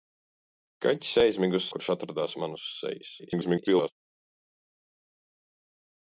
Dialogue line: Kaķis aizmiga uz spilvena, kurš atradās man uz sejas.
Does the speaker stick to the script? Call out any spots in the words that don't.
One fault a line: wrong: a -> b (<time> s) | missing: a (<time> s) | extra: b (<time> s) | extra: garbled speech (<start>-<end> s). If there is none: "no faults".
missing: spilvena (1.6 s)
extra: garbled speech (3.2-3.9 s)